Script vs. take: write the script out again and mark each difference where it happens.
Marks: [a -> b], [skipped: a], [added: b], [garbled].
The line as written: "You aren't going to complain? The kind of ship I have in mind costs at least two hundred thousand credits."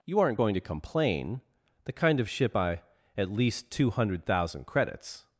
"You aren't going to complain? The kind of ship I [skipped: have in mind costs] at least two hundred thousand credits."